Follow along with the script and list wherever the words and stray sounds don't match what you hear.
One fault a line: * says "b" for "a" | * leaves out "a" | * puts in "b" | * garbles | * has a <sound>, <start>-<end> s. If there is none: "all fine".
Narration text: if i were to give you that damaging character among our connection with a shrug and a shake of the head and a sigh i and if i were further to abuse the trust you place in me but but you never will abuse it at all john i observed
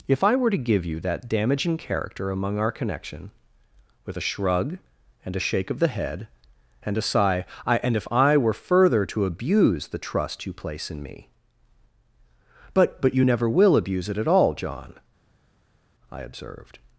all fine